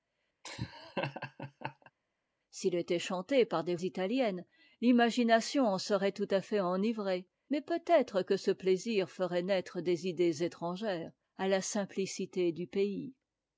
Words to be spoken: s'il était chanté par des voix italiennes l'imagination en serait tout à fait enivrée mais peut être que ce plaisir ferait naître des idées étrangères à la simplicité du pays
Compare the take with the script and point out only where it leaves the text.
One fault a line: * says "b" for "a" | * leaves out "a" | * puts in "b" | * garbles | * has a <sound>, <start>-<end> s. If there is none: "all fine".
* has a laugh, 0.4-1.9 s
* leaves out "voix"